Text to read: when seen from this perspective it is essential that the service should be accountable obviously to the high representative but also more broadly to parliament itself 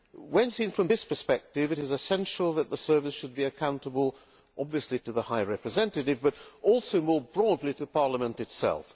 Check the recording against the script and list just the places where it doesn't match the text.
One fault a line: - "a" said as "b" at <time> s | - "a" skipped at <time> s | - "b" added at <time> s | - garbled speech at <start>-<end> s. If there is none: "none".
none